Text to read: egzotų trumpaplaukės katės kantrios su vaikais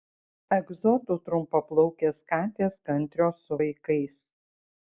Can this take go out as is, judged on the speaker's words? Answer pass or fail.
pass